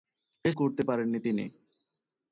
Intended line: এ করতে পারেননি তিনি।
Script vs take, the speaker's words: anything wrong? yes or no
no